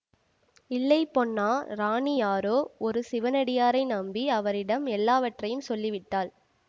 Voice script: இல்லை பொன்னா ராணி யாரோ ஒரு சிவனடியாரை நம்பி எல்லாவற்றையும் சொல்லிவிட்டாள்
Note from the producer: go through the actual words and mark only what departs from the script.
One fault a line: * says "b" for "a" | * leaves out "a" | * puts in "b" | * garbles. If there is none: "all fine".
* puts in "அவரிடம்"